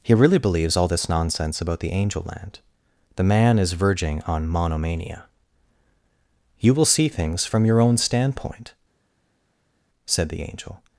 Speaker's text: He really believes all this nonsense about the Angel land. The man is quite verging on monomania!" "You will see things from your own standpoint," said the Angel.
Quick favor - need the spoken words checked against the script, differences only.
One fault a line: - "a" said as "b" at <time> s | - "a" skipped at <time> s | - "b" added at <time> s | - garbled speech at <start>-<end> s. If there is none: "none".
- "quite" skipped at 3.7 s